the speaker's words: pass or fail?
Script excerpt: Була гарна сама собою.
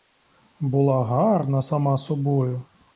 pass